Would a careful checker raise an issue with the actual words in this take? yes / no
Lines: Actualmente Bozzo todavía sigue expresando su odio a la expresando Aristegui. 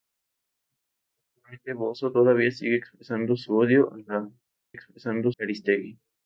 no